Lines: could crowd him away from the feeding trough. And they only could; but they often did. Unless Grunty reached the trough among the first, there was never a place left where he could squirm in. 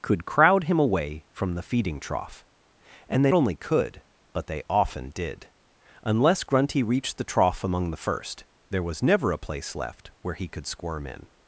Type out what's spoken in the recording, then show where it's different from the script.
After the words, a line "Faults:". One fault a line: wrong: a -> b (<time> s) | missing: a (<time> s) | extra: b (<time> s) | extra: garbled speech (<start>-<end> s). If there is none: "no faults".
could crowd him away from the feeding trough. And they only could; but they often did. Unless Grunty reached the trough among the first, there was never a place left where he could squirm in.
Faults:
no faults